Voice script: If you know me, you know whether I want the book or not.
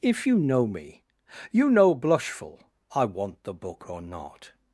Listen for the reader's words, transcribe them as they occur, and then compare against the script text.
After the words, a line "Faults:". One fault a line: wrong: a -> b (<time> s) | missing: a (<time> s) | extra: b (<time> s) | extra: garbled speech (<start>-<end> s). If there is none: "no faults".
If you know me, you know blushful I want the book or not.
Faults:
wrong: whether -> blushful (1.9 s)